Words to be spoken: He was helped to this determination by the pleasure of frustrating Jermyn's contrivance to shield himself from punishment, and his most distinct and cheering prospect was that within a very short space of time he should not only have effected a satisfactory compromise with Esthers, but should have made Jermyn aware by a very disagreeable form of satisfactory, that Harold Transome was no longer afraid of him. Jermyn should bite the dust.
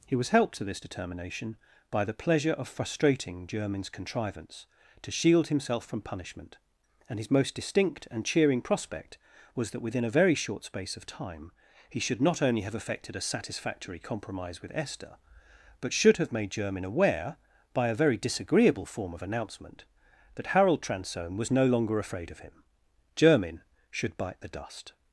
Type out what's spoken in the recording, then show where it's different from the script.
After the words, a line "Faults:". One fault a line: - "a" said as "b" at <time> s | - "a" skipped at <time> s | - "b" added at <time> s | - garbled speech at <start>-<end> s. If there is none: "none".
He was helped to this determination by the pleasure of frustrating Jermyn's contrivance to shield himself from punishment, and his most distinct and cheering prospect was that within a very short space of time he should not only have effected a satisfactory compromise with Esther, but should have made Jermyn aware by a very disagreeable form of announcement, that Harold Transome was no longer afraid of him. Jermyn should bite the dust.
Faults:
- "Esthers" said as "Esther" at 14.7 s
- "satisfactory" said as "announcement" at 19.2 s